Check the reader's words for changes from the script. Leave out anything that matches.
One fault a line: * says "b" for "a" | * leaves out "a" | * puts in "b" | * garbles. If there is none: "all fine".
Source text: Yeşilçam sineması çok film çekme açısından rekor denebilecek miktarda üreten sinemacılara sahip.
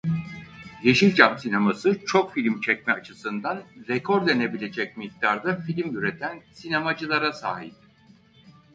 * puts in "film"